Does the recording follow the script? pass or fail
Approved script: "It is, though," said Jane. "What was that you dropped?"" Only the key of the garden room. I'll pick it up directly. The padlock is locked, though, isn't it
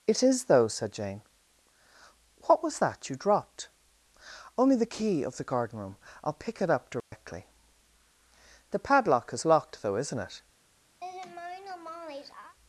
pass